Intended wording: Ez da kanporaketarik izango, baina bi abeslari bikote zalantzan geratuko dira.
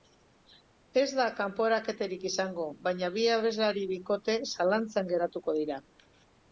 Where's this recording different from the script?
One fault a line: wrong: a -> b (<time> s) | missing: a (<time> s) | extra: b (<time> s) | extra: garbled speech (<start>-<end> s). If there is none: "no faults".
no faults